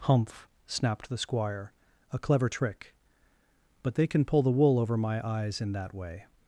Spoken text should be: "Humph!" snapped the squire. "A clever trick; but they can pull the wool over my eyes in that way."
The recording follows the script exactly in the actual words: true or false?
true